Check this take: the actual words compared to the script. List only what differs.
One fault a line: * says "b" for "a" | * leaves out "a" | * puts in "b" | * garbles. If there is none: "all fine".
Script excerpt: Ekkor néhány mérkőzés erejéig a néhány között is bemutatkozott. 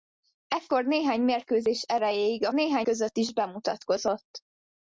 all fine